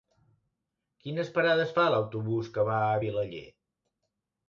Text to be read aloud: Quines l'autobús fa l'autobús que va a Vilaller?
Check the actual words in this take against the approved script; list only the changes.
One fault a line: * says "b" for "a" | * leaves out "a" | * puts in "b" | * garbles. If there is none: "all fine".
* says "parades" for "l'autobús"